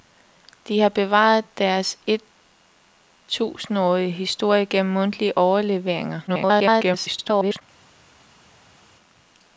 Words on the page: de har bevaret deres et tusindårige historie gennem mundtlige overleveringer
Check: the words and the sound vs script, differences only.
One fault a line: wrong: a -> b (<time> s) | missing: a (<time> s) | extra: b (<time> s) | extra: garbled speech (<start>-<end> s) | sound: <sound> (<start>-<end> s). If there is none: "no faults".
extra: garbled speech (6.3-7.6 s)